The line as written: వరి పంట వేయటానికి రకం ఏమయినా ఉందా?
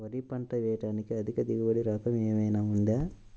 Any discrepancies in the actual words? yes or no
yes